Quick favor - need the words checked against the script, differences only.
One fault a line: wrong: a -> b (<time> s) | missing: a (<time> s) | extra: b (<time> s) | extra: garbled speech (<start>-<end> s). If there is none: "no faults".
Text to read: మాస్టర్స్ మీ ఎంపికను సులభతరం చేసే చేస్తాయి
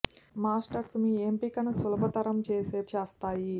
no faults